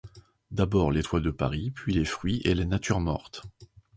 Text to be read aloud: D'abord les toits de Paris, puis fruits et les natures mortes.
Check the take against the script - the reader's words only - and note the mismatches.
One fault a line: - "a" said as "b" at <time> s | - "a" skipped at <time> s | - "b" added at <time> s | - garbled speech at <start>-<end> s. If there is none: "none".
- "les" added at 1.9 s